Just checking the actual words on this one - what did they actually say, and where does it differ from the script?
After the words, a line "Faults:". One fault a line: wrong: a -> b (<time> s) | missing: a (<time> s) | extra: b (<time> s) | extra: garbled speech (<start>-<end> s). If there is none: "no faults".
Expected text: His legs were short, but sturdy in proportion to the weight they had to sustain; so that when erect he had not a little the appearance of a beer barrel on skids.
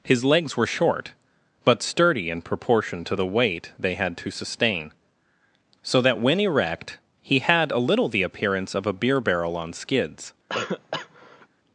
His legs were short, but sturdy in proportion to the weight they had to sustain; so that when erect he had a little the appearance of a beer barrel on skids.
Faults:
missing: not (7.7 s)